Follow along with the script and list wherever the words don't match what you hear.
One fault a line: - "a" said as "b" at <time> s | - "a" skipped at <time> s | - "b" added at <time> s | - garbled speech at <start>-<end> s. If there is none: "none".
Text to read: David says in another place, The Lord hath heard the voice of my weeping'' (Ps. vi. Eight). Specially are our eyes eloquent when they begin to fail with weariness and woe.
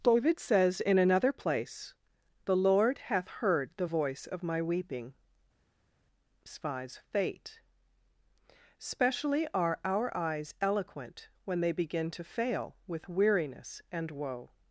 - "Ps vi Eight" said as "Spies fate" at 6.5 s